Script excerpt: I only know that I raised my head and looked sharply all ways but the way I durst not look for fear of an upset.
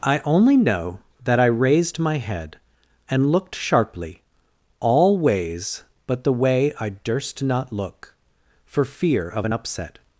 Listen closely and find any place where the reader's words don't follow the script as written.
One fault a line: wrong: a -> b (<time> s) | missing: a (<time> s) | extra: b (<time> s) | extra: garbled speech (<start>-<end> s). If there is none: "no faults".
no faults